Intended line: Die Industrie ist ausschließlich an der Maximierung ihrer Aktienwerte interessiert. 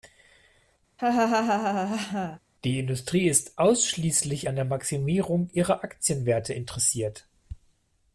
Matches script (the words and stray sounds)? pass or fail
fail